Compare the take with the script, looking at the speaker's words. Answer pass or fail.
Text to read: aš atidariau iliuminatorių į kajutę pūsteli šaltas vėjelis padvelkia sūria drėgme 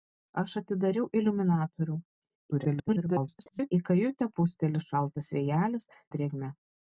fail